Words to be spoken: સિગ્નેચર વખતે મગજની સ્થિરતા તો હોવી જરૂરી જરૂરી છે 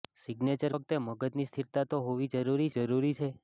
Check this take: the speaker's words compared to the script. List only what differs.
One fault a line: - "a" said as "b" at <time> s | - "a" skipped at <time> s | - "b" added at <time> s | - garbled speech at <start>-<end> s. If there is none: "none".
none